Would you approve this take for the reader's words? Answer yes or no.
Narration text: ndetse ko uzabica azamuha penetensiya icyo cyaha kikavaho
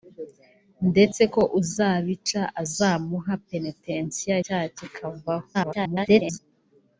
no